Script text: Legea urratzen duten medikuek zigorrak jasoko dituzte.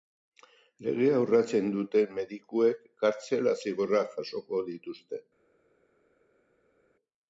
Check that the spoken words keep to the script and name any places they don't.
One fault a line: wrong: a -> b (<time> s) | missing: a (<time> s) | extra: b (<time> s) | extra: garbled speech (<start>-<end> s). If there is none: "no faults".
extra: kartzela (3.0 s)